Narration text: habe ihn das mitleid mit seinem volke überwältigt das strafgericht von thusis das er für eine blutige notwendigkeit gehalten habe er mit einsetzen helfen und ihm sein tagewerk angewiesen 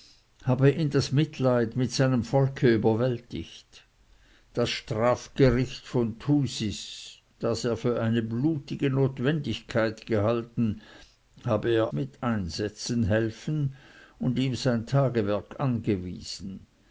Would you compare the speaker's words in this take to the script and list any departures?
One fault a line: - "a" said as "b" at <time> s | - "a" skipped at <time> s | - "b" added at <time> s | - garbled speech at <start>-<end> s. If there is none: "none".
none